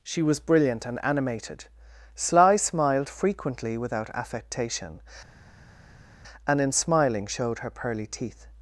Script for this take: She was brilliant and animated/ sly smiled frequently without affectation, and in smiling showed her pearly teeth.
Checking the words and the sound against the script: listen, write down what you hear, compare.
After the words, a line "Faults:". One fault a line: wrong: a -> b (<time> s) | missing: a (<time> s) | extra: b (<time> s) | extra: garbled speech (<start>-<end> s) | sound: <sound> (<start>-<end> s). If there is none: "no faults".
She was brilliant and animated/ sly smiled frequently without affectation, and in smiling showed her pearly teeth.
Faults:
no faults